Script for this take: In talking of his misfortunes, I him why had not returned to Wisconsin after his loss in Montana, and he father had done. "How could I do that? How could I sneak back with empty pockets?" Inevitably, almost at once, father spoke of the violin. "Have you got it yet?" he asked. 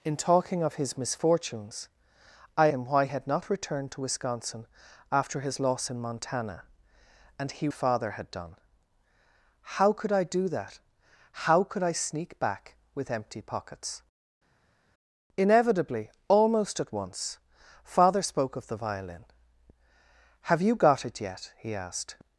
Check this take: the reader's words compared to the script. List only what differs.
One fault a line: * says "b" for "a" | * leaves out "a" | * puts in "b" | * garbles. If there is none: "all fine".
all fine